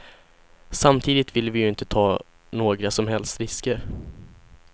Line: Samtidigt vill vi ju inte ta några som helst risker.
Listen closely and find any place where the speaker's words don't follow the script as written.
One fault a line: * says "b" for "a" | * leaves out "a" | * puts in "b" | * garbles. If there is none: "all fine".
all fine